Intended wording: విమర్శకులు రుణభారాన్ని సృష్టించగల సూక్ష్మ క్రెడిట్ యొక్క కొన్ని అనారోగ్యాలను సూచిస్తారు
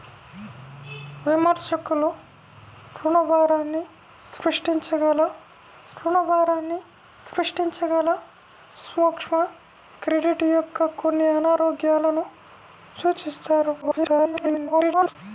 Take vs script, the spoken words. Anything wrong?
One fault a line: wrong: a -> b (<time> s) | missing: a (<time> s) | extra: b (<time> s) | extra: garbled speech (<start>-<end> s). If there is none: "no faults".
extra: రుణభారాన్ని సృష్టించగల (6.0 s)
extra: garbled speech (13.8-15.2 s)